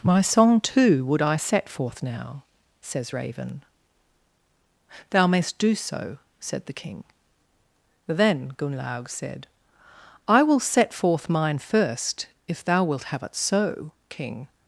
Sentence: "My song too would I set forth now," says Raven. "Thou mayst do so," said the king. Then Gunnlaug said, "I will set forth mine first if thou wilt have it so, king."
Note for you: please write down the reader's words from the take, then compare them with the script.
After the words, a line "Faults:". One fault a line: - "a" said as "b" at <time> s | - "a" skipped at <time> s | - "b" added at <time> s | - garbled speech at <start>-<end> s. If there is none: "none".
"My song too would I set forth now," says Raven. "Thou mayst do so," said the king. Then Gunnlaug said, "I will set forth mine first if thou wilt have it so, king."
Faults:
none